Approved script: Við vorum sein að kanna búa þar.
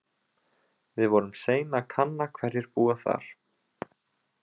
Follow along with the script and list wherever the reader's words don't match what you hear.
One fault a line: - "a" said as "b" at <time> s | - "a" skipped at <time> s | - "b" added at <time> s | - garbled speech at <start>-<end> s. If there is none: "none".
- "hverjir" added at 2.4 s